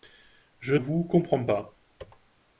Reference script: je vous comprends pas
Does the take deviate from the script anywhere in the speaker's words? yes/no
no